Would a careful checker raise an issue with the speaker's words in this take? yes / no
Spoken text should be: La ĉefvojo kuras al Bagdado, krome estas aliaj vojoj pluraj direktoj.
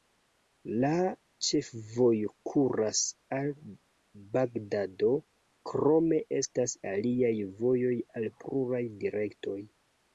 yes